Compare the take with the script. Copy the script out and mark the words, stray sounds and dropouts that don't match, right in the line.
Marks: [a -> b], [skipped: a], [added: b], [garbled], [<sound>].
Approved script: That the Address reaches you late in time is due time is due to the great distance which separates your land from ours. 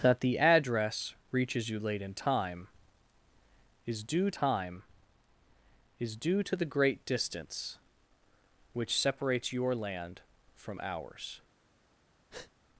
That the Address reaches you late in time is due time is due to the great distance which separates your land from ours. [breath]